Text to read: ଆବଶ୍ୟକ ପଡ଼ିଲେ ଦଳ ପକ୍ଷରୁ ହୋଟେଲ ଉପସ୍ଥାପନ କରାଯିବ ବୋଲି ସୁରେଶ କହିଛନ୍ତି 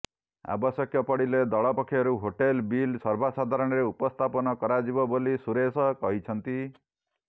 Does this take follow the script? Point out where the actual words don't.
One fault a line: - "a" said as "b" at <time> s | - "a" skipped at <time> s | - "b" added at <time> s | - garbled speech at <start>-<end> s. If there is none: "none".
- "ବିଲ୍ ସର୍ବସାଧାରଣରେ" added at 2.7 s